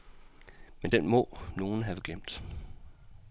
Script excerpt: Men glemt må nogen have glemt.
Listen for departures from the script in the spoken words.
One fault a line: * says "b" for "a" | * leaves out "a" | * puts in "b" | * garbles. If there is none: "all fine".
* says "den" for "glemt"